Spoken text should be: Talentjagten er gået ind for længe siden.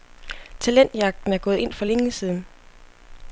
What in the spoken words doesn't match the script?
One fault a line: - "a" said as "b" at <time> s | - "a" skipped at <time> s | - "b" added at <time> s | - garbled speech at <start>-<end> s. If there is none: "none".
none